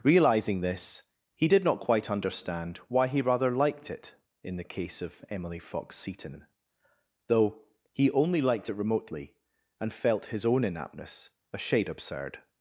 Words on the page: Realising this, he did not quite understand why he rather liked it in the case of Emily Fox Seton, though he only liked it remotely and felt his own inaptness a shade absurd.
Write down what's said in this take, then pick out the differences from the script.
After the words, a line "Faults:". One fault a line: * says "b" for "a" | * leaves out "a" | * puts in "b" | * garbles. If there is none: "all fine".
Realising this, he did not quite understand why he rather liked it in the case of Emily Fox Seton, though he only liked it remotely and felt his own inaptness a shade absurd.
Faults:
all fine